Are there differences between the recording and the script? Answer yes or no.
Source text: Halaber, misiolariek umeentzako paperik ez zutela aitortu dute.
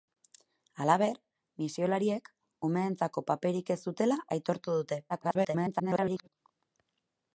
yes